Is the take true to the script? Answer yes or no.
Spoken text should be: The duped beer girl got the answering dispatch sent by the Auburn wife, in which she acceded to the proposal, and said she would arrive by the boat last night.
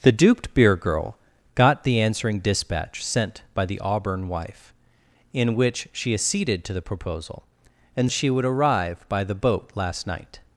no